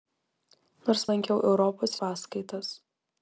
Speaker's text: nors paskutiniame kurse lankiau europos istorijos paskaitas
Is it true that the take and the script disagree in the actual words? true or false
true